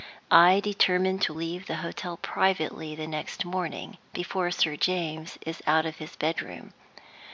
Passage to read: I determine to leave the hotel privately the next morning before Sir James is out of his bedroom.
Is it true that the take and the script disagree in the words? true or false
false